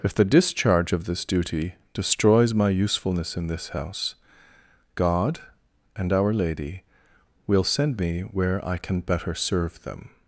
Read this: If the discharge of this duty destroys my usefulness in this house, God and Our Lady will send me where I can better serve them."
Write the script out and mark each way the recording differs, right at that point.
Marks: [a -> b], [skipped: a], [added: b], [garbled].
If the discharge of this duty destroys my usefulness in this house, God and Our Lady will send me where I can better serve them."